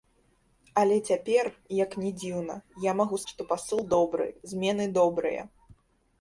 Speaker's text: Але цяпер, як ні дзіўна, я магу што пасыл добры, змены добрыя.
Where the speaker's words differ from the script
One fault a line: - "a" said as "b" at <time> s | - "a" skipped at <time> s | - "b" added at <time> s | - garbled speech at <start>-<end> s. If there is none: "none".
none